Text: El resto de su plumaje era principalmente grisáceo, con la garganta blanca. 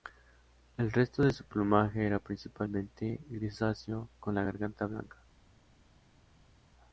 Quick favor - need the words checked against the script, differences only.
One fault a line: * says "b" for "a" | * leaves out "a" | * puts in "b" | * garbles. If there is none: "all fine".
all fine